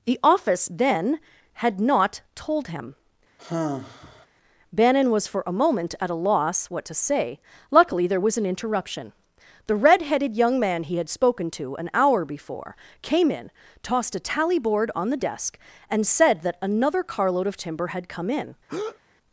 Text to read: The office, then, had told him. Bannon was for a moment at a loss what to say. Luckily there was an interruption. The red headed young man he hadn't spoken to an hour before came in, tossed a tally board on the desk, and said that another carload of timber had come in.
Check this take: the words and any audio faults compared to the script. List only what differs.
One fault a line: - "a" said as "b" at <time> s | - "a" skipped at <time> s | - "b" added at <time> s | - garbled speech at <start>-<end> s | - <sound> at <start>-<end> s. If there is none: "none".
- "not" added at 1.8 s
- sigh at 3.4-4.3 s
- "hadn't" said as "had" at 11.0 s
- breath at 18.7-19.0 s